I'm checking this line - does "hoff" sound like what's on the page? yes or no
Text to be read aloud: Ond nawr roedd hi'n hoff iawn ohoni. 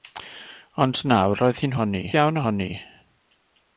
no